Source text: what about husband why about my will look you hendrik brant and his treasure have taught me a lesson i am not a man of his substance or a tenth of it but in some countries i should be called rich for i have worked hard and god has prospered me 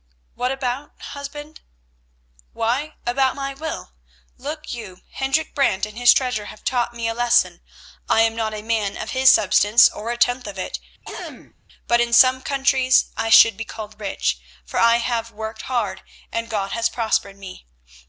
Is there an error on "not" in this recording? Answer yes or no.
no